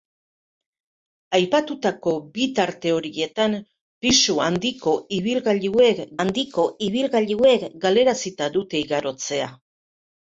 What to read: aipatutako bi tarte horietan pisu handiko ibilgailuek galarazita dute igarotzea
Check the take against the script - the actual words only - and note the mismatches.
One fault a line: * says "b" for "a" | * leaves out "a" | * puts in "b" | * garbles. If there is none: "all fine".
* puts in "handiko ibilgailuek"